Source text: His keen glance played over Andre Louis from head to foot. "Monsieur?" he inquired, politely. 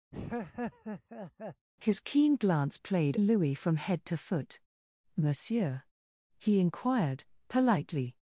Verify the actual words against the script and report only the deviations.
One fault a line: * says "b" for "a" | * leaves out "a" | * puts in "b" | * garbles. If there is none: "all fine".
* leaves out "over Andre"